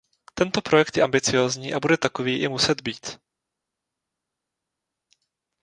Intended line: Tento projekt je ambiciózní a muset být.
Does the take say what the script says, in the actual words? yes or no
no